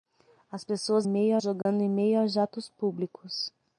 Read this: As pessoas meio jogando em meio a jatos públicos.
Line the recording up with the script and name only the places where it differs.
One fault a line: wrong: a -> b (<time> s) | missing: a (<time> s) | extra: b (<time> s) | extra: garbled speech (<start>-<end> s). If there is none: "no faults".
no faults